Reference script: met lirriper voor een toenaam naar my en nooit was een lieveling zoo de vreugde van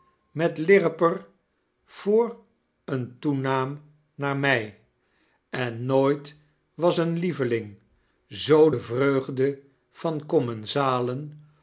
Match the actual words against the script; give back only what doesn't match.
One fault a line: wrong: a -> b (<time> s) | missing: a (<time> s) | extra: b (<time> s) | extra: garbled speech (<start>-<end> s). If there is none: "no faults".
no faults